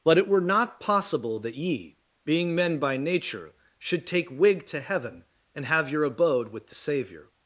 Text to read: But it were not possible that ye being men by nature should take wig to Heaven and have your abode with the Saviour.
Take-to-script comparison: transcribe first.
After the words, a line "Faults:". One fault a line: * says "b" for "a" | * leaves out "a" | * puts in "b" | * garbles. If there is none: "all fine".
But it were not possible that ye being men by nature should take wig to Heaven and have your abode with the Saviour.
Faults:
all fine